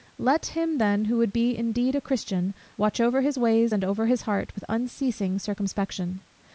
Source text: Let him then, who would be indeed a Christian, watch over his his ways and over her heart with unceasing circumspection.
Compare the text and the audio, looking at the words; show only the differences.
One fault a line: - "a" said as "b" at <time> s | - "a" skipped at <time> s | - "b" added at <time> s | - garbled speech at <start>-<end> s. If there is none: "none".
- "his" skipped at 3.4 s
- "her" said as "his" at 4.0 s